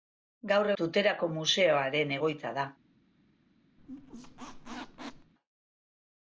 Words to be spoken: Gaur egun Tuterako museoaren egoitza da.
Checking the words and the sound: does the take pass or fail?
fail